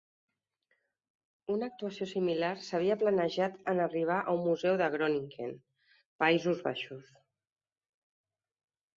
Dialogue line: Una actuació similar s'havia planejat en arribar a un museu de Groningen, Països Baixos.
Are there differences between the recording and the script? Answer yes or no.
no